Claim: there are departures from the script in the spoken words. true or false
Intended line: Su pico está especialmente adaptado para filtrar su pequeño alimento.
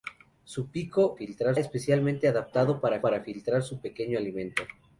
true